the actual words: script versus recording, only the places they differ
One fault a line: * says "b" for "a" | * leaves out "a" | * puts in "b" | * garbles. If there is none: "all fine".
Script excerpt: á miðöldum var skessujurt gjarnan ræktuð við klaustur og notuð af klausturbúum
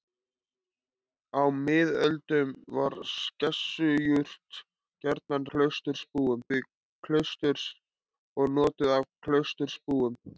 * says "klausturbúum" for "ræktuð"